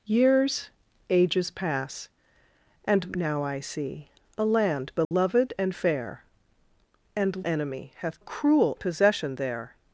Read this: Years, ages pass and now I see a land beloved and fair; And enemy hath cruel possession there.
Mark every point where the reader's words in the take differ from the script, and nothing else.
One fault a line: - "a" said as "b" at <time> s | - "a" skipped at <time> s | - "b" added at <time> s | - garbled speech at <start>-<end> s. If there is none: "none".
none